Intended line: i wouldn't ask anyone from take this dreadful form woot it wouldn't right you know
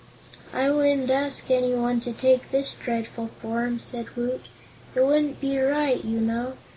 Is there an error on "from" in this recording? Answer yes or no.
yes